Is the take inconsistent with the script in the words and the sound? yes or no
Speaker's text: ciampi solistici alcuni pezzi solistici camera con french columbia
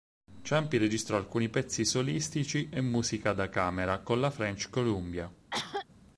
yes